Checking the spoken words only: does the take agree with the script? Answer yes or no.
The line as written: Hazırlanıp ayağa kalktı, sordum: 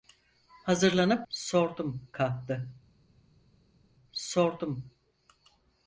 no